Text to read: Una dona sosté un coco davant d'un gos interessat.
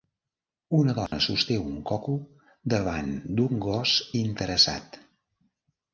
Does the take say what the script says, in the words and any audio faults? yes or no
no